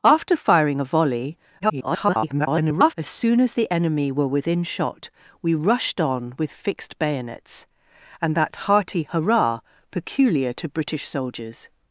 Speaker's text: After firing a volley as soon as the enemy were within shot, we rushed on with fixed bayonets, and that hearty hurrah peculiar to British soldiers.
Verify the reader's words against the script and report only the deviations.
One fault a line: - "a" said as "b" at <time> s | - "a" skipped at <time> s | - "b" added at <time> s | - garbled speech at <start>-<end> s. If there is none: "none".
- garbled speech at 1.6-2.9 s